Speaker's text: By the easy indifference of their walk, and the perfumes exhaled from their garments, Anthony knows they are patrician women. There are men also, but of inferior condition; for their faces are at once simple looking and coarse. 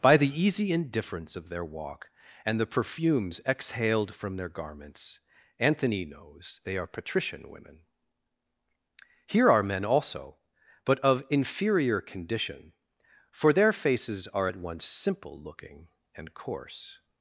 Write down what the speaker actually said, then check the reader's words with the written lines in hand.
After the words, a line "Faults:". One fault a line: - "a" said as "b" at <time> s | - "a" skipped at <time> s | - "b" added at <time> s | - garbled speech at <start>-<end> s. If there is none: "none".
By the easy indifference of their walk, and the perfumes exhaled from their garments, Anthony knows they are patrician women. Here are men also, but of inferior condition; for their faces are at once simple looking and coarse.
Faults:
- "There" said as "Here" at 9.3 s